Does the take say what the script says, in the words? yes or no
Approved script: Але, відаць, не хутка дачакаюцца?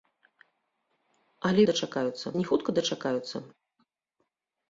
no